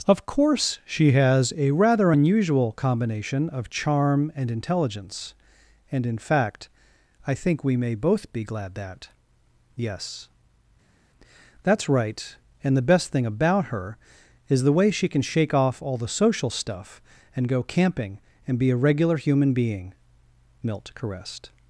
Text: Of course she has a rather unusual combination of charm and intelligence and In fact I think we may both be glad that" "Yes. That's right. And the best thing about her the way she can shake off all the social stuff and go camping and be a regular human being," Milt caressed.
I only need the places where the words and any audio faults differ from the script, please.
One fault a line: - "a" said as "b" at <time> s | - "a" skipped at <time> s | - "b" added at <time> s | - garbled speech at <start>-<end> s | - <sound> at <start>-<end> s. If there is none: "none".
- "is" added at 14.5 s